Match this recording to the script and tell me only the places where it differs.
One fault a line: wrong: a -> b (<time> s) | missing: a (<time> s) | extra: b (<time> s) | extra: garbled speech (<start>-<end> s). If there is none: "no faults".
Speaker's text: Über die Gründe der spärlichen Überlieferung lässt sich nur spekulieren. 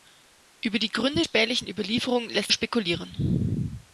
missing: der (1.2 s)
missing: sich nur (2.5 s)